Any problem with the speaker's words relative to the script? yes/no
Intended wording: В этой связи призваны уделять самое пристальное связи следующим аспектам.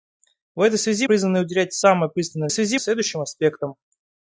no